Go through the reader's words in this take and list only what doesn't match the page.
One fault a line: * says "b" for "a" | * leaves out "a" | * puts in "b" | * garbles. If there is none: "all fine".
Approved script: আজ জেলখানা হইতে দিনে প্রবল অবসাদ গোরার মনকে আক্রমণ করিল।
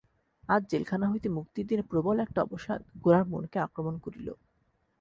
* puts in "মুক্তির"
* puts in "একটা"